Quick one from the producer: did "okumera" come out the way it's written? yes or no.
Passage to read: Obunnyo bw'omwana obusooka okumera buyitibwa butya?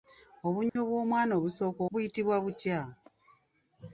no